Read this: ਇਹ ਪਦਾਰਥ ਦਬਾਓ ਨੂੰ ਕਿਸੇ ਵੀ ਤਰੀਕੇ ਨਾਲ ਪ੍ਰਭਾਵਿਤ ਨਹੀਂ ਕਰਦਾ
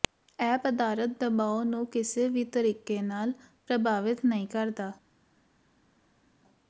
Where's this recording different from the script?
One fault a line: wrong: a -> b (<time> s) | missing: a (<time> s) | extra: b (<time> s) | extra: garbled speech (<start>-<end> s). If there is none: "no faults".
no faults